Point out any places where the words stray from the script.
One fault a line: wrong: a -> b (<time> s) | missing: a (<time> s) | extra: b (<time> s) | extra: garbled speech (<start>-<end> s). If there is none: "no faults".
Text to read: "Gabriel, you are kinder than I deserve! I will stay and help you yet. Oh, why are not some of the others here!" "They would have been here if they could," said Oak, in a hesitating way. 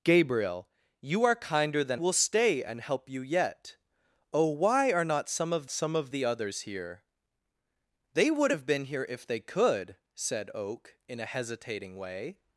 missing: I deserve I (2.0 s)
extra: some of (5.7 s)